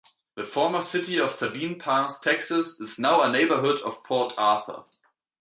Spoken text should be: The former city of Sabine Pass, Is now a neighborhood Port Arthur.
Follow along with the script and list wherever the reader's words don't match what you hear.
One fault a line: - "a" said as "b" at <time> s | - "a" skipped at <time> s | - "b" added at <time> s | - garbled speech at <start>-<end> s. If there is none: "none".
- "Texas" added at 2.2 s
- "of" added at 3.8 s